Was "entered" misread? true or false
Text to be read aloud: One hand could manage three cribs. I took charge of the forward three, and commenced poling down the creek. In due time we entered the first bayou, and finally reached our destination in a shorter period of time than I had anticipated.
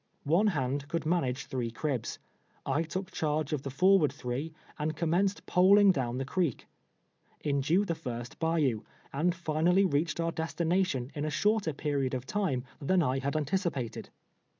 true